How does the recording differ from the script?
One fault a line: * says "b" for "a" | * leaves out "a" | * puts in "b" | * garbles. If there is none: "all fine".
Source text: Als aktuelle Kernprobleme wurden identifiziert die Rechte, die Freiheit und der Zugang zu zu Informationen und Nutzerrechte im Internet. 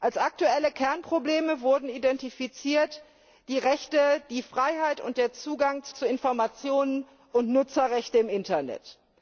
all fine